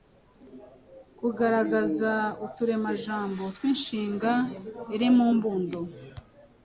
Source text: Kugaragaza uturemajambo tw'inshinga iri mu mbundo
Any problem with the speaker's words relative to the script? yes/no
no